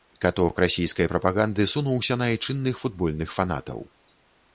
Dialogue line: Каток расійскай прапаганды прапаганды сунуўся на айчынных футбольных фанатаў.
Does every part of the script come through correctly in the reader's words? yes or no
no